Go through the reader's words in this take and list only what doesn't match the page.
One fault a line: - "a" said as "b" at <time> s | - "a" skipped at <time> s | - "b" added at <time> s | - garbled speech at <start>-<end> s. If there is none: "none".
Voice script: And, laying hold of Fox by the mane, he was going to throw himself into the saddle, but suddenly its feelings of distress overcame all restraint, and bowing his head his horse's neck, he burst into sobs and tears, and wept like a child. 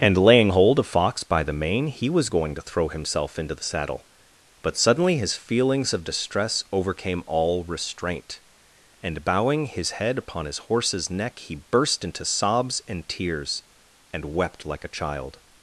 - "its" said as "his" at 5.2 s
- "upon" added at 10.2 s